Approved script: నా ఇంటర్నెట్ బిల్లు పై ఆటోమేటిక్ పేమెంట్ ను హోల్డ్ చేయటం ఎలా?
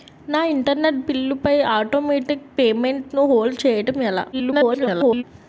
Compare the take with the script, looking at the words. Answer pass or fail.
fail